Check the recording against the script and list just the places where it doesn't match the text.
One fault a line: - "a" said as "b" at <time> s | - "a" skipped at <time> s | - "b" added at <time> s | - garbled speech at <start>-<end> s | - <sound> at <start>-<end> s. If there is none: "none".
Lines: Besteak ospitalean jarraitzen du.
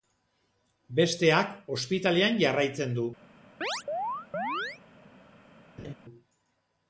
- chirp at 3.6-4.8 s
- laugh at 5.8-5.9 s